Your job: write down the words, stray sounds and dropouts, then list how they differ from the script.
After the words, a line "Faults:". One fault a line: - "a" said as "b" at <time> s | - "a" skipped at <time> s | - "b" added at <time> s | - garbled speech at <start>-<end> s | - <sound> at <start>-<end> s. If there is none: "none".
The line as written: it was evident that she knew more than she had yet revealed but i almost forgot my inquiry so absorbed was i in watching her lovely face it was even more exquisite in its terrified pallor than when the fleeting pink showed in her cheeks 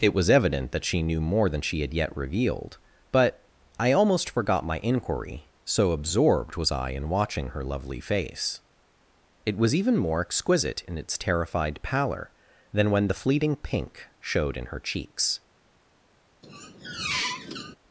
it was evident that she knew more than she had yet revealed but i almost forgot my inquiry so absorbed was i in watching her lovely face it was even more exquisite in its terrified pallor than when the fleeting pink showed in her cheeks
Faults:
- squeak at 16.4-17.8 s